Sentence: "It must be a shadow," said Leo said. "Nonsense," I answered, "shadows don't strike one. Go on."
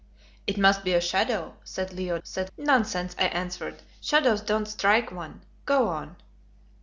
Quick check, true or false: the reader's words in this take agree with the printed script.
true